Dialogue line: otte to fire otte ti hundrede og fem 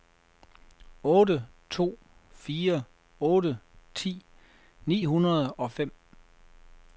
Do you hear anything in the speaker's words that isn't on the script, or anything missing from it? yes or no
yes